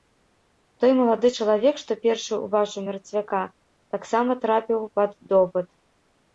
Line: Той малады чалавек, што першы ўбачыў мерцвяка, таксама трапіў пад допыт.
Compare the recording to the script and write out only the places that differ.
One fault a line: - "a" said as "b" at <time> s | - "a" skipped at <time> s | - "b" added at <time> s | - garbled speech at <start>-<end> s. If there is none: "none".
none